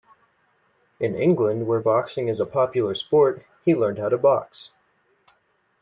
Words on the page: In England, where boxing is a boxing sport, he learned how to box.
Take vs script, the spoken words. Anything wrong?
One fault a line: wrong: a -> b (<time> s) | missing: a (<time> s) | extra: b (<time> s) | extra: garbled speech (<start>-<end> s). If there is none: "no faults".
wrong: boxing -> popular (2.5 s)